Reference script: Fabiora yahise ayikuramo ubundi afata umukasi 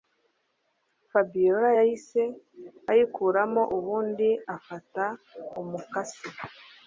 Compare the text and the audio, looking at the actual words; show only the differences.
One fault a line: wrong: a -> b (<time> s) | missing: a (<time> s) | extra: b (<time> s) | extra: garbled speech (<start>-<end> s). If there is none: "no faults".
no faults